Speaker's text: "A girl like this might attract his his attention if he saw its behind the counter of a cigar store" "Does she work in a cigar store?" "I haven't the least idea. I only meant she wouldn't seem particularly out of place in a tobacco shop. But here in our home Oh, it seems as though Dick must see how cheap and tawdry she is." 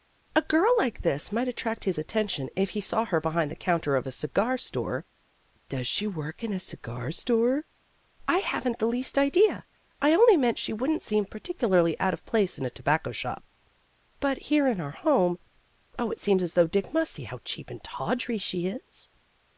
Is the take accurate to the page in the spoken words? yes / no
no